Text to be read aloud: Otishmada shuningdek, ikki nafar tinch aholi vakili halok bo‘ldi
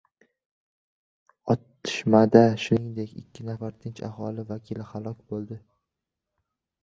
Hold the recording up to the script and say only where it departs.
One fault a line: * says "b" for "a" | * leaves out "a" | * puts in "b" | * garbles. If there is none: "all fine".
all fine